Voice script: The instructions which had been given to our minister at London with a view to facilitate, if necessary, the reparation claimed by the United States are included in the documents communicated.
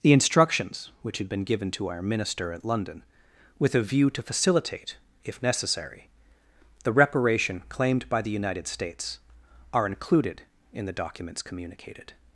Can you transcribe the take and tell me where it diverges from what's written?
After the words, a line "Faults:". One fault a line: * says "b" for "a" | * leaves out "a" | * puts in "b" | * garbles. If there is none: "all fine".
The instructions which had been given to our minister at London with a view to facilitate, if necessary, the reparation claimed by the United States are included in the documents communicated.
Faults:
all fine